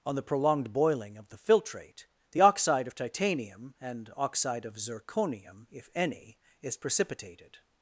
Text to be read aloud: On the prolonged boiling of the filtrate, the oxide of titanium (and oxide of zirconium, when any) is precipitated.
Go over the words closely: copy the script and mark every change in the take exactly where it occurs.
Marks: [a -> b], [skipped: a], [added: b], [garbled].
On the prolonged boiling of the filtrate, the oxide of titanium (and oxide of zirconium, [when -> if] any) is precipitated.